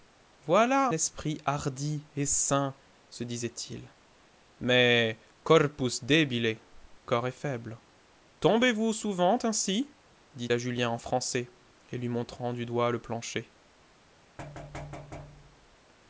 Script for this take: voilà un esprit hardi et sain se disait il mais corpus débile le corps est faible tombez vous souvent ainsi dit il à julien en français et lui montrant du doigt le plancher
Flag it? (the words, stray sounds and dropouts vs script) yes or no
yes